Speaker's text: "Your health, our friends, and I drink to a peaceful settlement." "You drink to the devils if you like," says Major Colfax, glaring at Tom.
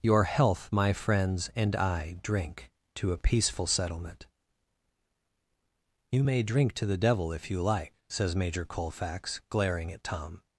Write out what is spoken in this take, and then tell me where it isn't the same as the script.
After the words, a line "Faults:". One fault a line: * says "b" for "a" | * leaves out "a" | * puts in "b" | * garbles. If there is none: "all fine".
"Your health, my friends, and I drink to a peaceful settlement." "You may drink to the devil if you like," says Major Colfax, glaring at Tom.
Faults:
* says "my" for "our"
* puts in "may"
* says "devil" for "devils"